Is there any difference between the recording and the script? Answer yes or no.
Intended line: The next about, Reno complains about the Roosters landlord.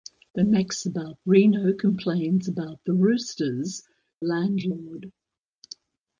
no